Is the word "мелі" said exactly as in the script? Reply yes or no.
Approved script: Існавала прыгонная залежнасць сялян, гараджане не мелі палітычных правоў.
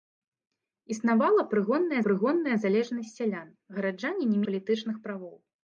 no